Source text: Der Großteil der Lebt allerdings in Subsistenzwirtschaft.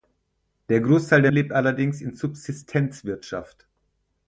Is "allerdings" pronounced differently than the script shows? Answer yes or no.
no